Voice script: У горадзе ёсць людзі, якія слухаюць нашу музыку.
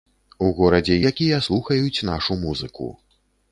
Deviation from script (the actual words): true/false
true